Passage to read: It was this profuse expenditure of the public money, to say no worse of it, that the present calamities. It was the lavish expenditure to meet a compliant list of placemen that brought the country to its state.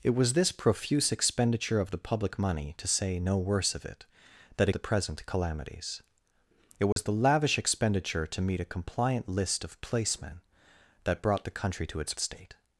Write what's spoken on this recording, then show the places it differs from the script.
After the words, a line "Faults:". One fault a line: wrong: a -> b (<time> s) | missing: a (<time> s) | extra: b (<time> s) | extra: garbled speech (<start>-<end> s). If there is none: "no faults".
It was this profuse expenditure of the public money, to say no worse of it, that the present calamities. It was the lavish expenditure to meet a compliant list of placemen that brought the country to its state.
Faults:
no faults